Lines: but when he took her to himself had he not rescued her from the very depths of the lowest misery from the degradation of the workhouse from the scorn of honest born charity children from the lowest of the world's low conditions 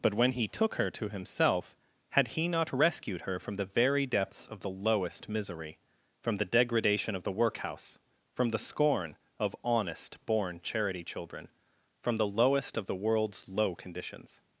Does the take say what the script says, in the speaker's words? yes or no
yes